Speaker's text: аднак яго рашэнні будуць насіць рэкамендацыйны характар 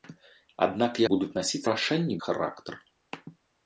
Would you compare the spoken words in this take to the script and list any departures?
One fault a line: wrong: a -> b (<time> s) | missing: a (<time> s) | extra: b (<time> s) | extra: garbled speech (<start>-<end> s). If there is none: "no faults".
missing: яго рашэнні (1.0 s)
wrong: рэкамендацыйны -> рашэнні (1.7 s)